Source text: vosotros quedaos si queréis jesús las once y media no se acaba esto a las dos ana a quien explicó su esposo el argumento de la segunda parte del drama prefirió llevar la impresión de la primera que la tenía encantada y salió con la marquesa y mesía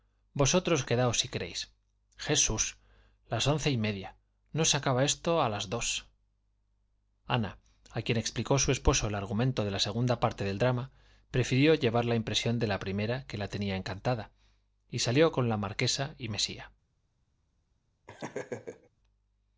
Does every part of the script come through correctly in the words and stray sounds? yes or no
no